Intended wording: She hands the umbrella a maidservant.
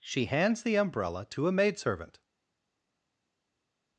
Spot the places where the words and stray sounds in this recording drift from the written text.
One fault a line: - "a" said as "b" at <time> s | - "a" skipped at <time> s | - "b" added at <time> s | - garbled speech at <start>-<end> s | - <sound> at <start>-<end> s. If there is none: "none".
- "to" added at 1.3 s